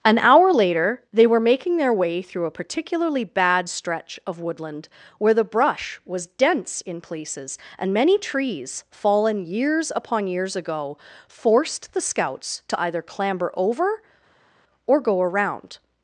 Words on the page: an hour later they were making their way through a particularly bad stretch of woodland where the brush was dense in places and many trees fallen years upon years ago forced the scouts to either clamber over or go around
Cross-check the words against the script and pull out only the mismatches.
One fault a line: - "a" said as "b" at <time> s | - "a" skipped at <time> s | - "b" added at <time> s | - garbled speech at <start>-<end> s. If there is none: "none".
none